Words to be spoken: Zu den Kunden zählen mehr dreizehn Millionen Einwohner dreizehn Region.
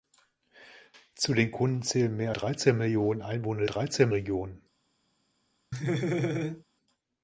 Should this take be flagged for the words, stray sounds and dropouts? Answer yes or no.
yes